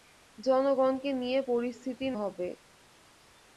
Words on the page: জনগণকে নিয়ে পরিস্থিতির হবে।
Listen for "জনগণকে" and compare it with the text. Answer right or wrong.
right